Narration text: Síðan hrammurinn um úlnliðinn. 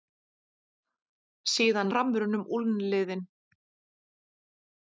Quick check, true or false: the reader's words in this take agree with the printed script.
true